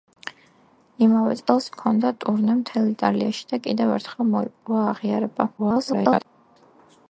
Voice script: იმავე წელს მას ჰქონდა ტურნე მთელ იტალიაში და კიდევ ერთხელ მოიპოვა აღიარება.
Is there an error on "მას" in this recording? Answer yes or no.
yes